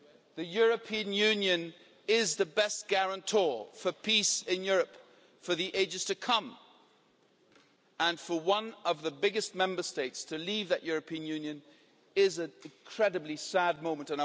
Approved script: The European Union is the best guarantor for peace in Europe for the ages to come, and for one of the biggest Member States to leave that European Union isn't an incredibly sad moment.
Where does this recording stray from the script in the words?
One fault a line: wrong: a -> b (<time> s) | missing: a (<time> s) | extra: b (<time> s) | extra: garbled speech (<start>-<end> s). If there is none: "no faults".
wrong: isn't -> is (12.2 s)